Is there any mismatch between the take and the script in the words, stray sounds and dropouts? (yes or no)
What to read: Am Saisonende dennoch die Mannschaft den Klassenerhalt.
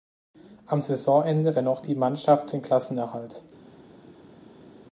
no